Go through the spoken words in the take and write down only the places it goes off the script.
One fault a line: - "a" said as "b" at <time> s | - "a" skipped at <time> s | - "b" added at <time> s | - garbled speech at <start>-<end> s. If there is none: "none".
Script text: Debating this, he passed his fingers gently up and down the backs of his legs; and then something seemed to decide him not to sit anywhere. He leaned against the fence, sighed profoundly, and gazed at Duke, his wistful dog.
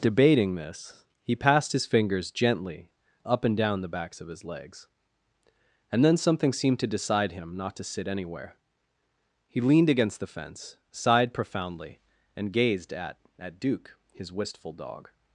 - "at" added at 13.4 s